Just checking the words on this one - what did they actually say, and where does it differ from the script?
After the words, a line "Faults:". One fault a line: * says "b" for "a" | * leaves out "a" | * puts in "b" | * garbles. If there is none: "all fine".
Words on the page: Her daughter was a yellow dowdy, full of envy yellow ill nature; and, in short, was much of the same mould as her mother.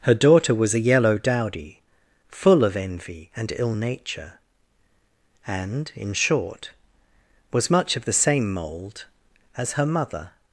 Her daughter was a yellow dowdy, full of envy and ill nature; and, in short, was much of the same mould as her mother.
Faults:
* says "and" for "yellow"